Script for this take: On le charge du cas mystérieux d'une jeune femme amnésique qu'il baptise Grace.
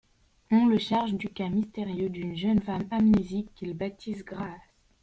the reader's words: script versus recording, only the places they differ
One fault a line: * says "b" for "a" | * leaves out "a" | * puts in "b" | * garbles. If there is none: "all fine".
all fine